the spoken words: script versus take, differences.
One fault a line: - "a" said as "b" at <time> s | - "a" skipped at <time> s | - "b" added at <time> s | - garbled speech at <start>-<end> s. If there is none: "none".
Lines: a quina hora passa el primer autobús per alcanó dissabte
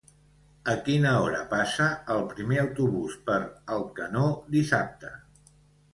none